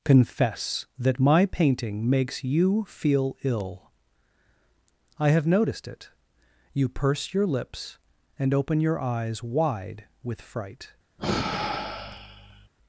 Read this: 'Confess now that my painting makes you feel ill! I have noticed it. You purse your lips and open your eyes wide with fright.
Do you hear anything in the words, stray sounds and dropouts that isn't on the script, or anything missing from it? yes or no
yes